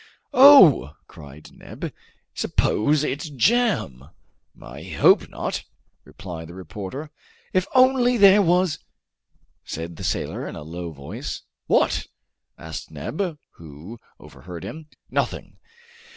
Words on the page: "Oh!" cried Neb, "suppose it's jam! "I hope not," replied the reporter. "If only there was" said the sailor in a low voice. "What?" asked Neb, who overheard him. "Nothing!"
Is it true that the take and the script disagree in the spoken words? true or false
false